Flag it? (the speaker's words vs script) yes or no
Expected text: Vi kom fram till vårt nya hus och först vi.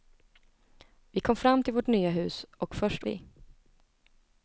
no